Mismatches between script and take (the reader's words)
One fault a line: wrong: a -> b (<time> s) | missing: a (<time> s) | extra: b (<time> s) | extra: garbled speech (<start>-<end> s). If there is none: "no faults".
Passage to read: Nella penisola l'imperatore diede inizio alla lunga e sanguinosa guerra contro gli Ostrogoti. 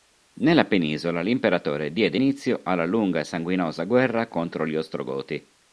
no faults